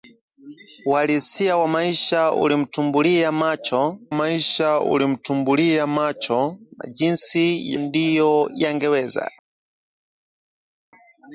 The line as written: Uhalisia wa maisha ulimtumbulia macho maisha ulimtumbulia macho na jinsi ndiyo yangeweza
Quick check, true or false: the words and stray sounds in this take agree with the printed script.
true